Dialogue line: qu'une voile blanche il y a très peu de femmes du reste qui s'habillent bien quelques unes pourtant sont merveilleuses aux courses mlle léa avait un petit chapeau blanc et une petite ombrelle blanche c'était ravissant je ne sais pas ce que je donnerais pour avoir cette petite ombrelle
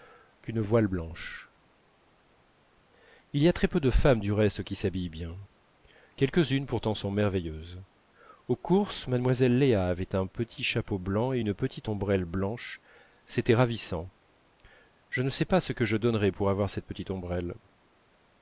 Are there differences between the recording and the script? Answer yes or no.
no